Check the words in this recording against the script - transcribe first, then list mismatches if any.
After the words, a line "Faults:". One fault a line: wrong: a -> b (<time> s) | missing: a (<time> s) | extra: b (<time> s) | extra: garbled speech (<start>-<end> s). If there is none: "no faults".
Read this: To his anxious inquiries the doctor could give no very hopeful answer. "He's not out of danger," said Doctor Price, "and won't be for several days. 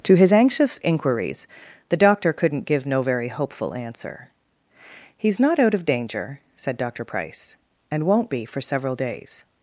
To his anxious inquiries the doctor couldn't give no very hopeful answer. "He's not out of danger," said Doctor Price, "and won't be for several days.
Faults:
wrong: could -> couldn't (2.3 s)